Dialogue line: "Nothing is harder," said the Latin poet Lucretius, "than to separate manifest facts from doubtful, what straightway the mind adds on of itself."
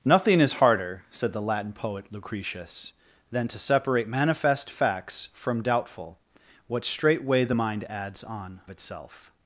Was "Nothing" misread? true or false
false